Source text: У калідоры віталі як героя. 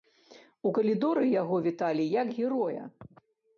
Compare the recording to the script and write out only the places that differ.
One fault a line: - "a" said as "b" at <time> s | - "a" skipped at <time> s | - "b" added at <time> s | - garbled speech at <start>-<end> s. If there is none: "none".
- "яго" added at 1.4 s